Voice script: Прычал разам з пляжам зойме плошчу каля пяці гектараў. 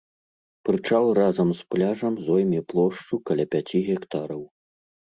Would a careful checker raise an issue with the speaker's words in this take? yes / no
no